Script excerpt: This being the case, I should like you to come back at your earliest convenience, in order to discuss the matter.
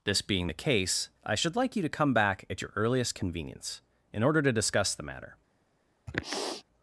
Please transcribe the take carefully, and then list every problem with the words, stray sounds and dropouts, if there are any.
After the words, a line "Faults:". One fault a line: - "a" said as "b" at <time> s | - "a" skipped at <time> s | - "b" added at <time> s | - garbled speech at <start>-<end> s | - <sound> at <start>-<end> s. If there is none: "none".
This being the case, I should like you to come back at your earliest convenience, in order to discuss the matter.
Faults:
- sniff at 6.1-6.6 s